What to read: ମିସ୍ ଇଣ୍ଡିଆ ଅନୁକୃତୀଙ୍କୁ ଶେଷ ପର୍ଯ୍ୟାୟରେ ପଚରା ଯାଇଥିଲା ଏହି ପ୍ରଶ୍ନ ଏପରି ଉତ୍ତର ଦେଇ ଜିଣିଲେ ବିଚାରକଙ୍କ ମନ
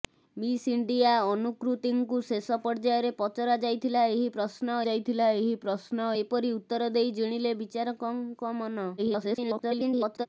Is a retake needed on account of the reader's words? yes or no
yes